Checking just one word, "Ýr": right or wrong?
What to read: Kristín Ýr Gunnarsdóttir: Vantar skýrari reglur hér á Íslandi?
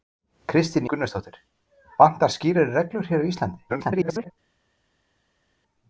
wrong